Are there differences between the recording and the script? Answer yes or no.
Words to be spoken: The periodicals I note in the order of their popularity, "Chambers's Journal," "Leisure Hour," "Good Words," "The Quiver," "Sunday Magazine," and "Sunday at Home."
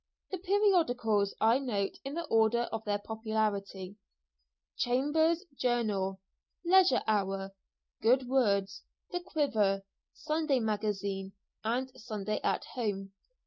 no